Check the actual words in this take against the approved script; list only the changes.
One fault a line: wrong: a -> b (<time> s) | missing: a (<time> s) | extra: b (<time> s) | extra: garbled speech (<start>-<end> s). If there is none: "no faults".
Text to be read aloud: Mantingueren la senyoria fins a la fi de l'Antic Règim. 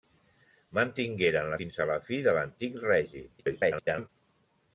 missing: senyoria (1.6 s)
extra: garbled speech (3.4-4.1 s)